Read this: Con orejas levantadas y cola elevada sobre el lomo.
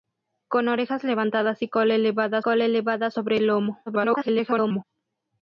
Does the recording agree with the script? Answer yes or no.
no